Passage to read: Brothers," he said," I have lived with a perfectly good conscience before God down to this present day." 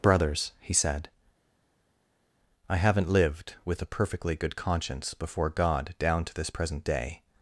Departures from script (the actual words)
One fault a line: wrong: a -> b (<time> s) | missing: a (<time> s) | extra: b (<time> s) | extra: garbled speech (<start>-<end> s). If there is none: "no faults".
wrong: have -> haven't (2.8 s)